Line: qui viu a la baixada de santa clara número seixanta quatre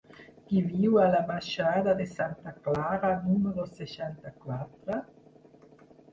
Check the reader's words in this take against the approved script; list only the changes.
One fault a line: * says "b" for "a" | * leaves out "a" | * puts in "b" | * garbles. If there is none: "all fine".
all fine